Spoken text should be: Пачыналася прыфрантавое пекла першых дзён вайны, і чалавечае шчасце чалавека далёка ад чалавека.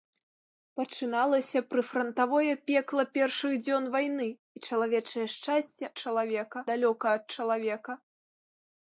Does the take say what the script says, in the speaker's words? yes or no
yes